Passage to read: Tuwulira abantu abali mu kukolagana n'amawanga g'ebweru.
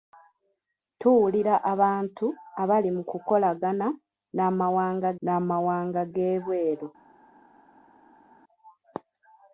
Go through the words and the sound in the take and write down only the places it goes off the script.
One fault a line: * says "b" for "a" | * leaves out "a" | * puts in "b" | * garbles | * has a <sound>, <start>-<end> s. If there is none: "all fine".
* puts in "n'amawanga"